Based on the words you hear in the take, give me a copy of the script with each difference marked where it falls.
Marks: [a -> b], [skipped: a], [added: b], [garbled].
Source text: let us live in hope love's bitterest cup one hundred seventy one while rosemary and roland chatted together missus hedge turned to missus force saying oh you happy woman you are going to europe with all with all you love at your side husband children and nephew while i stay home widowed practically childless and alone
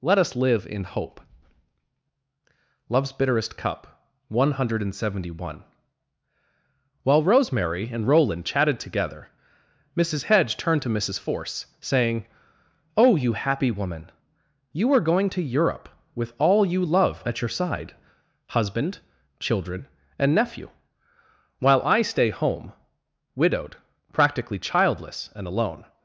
let us live in hope love's bitterest cup one hundred seventy one while rosemary and roland chatted together missus hedge turned to missus force saying oh you happy woman you are going to europe with all [skipped: with all] you love at your side husband children and nephew while i stay home widowed practically childless and alone